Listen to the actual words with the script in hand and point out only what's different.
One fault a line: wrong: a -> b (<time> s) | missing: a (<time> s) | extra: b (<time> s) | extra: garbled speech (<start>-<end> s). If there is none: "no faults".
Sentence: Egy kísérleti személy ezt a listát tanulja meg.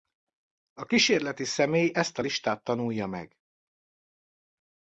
wrong: Egy -> A (0.7 s)